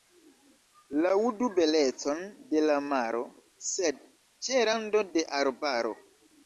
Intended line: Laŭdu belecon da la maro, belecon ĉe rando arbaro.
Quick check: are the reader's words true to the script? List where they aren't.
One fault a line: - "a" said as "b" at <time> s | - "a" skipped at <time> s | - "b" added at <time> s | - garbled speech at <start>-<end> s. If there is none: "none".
- "da" said as "de" at 2.5 s
- "belecon" said as "sed" at 3.7 s
- "de" added at 5.1 s